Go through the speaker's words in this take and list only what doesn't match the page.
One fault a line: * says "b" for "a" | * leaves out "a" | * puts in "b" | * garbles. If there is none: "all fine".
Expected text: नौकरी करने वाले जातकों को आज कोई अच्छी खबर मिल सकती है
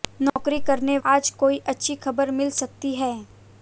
* leaves out "वाले जातकों को"